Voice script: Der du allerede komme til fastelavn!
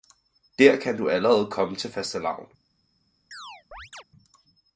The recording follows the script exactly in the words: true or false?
false